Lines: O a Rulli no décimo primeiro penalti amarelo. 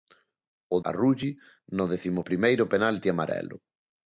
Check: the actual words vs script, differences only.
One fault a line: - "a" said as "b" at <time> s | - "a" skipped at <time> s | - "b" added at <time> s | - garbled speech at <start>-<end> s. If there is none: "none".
none